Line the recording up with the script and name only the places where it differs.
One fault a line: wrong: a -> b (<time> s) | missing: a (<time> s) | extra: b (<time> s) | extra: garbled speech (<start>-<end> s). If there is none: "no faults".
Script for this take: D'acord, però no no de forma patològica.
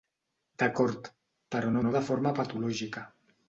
no faults